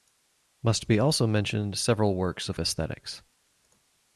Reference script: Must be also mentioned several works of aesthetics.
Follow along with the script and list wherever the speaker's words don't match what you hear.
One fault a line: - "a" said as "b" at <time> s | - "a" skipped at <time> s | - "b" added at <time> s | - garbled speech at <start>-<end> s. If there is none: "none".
none